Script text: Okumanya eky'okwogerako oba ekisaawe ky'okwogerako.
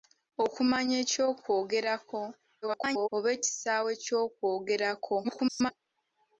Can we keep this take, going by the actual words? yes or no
no